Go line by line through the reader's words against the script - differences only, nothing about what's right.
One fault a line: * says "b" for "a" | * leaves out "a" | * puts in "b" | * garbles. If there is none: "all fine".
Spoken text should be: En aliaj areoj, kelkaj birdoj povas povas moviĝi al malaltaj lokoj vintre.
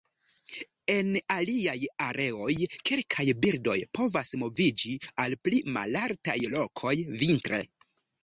* leaves out "povas"
* puts in "pli"